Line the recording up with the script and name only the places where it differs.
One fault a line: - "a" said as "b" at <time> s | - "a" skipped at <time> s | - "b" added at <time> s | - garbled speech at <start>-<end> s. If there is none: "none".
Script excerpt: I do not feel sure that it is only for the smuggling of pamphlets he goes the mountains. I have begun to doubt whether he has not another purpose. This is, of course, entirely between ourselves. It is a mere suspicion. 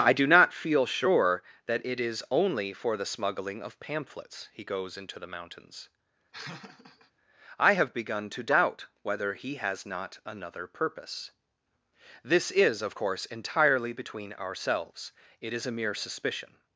- "into" added at 5.0 s